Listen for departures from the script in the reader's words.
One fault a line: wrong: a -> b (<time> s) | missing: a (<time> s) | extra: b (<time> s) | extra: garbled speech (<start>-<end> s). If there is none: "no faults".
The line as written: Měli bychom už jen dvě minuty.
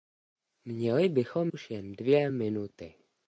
no faults